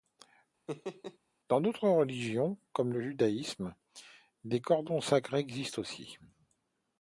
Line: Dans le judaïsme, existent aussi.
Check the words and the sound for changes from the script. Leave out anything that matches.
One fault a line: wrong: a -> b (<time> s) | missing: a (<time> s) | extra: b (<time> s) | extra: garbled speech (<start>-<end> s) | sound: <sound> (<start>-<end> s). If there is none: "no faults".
sound: laugh (0.7-1.2 s)
extra: d'autres religions comme (1.6 s)
extra: des cordons sacrés (4.5 s)